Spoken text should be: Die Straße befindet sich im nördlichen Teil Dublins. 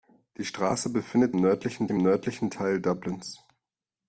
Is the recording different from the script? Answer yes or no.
yes